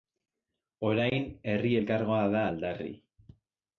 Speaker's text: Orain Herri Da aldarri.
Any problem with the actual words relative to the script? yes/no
yes